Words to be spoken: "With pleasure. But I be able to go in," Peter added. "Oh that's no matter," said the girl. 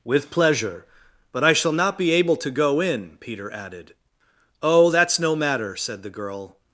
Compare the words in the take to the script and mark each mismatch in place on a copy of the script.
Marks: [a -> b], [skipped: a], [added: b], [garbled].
"With pleasure. But I [added: shall not] be able to go in," Peter added. "Oh that's no matter," said the girl.